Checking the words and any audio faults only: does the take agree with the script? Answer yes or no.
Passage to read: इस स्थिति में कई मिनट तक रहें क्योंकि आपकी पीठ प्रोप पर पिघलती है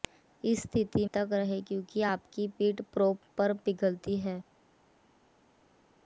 no